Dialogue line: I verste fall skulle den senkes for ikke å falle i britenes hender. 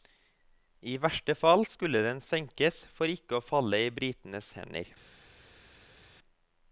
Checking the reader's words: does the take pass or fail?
pass